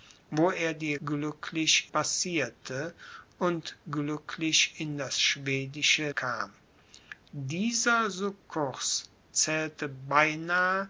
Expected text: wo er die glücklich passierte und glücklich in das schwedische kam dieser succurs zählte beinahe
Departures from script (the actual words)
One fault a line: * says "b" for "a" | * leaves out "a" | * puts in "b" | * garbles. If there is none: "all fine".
all fine